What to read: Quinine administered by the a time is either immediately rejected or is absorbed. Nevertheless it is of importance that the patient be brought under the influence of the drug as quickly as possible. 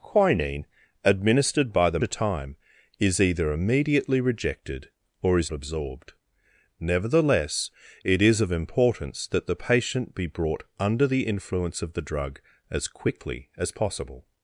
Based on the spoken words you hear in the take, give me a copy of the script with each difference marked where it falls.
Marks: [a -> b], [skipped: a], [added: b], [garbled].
Quinine administered by the a time is either immediately rejected or is absorbed. Nevertheless it is of importance that the patient be brought under the influence of the drug as quickly as possible.